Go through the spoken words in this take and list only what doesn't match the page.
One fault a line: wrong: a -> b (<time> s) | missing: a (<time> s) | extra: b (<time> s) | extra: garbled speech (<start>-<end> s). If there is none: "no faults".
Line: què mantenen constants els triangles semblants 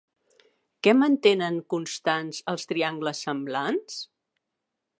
no faults